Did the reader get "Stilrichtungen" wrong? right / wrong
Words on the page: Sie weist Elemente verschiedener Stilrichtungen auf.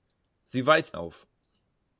wrong